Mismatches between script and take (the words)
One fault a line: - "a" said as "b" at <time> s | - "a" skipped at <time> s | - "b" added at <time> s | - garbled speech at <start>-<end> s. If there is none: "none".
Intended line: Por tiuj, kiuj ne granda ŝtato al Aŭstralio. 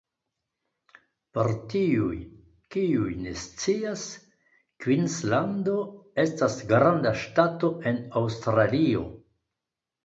- "scias Kvinslando estas" added at 3.4 s
- "al" said as "en" at 7.9 s